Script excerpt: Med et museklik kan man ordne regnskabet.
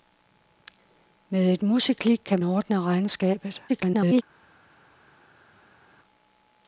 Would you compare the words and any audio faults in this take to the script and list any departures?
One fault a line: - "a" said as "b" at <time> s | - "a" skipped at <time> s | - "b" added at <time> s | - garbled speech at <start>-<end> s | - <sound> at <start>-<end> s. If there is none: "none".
- "man" skipped at 2.4 s
- garbled speech at 3.7-4.2 s